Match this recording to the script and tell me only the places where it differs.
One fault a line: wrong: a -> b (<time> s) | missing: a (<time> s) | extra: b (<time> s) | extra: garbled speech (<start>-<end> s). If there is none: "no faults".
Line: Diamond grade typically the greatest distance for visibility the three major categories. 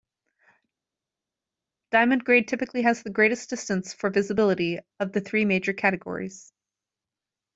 extra: has (2.8 s)
extra: of (5.0 s)